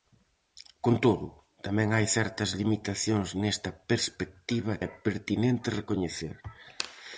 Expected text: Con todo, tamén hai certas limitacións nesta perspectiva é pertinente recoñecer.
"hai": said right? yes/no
yes